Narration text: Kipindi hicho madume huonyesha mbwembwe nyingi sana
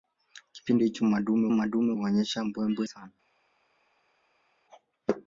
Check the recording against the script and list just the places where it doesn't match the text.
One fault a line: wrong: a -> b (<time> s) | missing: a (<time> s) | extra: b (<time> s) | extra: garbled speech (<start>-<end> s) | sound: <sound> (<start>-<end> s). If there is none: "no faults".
extra: madume (1.5 s)
missing: nyingi (2.9 s)